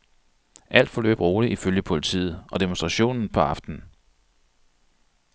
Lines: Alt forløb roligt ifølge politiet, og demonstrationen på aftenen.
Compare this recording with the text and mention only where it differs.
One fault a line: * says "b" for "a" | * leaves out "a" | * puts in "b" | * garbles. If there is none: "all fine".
all fine